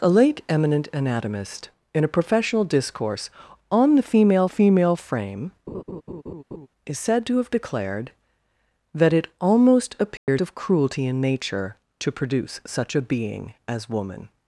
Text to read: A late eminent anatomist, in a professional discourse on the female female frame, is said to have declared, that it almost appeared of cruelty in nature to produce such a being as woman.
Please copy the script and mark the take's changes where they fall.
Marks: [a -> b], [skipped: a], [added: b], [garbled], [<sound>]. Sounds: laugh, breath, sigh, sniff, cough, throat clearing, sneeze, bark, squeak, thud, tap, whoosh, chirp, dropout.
A late eminent anatomist, in a professional discourse on the female female frame, [laugh] is said to have declared, that it almost appeared [dropout] of cruelty in nature to produce such a being as woman.